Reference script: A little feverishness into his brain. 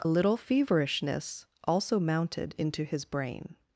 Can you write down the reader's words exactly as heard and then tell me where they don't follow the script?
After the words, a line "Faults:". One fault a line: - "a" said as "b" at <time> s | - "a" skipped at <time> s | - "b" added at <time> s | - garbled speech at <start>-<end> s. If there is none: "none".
A little feverishness also mounted into his brain.
Faults:
- "also mounted" added at 1.6 s